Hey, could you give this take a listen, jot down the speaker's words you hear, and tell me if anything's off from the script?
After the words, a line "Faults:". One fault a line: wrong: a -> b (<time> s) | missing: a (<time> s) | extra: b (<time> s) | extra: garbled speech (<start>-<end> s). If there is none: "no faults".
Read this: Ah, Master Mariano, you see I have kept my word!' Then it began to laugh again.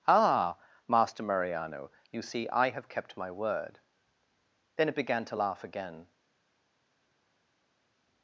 Ah, Master Mariano, you see I have kept my word!' Then it began to laugh again.
Faults:
no faults